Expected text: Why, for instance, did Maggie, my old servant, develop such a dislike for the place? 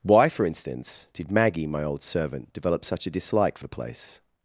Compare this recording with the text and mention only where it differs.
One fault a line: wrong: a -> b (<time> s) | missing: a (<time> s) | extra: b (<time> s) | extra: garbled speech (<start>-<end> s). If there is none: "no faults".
no faults